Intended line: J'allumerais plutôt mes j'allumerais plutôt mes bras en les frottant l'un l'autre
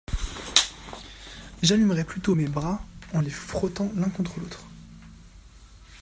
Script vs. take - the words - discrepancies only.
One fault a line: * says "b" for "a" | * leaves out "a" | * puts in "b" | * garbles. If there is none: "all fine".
* leaves out "j'allumerais plutôt mes"
* puts in "contre"